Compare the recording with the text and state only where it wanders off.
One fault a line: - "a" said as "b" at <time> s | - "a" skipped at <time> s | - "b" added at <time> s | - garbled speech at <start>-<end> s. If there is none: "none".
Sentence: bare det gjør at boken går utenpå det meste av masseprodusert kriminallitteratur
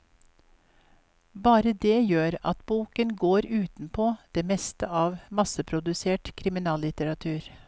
none